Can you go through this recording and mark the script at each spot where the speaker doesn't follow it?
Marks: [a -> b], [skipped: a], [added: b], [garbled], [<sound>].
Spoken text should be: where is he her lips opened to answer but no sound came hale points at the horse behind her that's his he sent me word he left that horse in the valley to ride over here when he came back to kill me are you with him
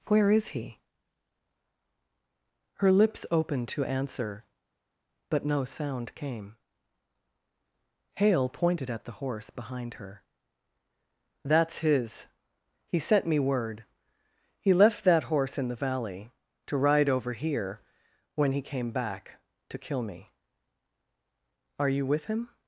where is he her lips opened to answer but no sound came hale [points -> pointed] at the horse behind her that's his he sent me word he left that horse in the valley to ride over here when he came back to kill me are you with him